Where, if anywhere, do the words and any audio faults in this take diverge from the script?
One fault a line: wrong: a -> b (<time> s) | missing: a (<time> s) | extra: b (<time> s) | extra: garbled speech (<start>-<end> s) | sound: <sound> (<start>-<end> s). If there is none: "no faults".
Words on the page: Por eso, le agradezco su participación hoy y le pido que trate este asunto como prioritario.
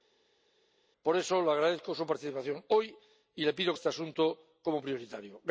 missing: que trate (3.7 s)